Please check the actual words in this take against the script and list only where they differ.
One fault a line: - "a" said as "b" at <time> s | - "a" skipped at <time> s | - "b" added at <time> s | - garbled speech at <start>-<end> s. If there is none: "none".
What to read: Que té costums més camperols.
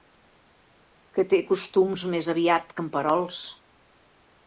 - "aviat" added at 2.4 s